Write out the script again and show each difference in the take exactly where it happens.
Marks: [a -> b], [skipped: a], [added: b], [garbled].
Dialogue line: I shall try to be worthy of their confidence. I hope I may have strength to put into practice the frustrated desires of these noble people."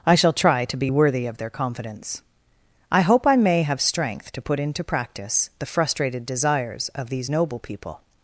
I shall try to be worthy of their confidence. I hope I may have strength to put into practice the frustrated desires of these noble people."